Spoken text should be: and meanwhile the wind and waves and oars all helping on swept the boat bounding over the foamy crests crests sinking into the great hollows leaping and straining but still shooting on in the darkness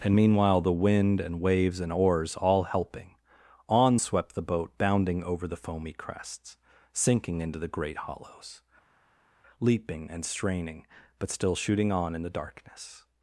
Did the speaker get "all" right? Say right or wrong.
right